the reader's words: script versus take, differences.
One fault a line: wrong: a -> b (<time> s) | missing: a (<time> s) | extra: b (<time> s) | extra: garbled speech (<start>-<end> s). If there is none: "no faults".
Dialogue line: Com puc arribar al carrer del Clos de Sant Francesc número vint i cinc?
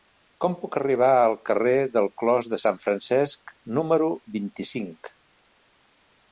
no faults